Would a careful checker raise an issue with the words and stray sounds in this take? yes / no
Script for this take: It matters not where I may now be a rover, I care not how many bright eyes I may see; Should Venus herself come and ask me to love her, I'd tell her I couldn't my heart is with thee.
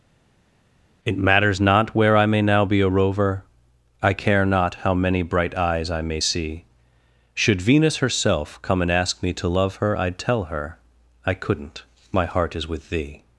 no